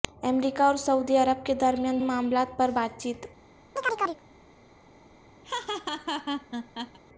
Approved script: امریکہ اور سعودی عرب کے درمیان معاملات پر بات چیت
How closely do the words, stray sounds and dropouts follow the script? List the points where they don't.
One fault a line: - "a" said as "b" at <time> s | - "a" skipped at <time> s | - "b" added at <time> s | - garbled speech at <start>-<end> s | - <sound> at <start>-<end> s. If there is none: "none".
- chirp at 3.8-4.2 s
- laugh at 5.4-7.0 s